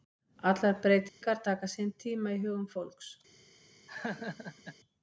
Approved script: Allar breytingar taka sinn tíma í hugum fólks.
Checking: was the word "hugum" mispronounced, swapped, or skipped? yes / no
no